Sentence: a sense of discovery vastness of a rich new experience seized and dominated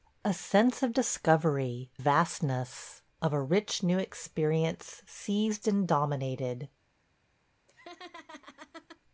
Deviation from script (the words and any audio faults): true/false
true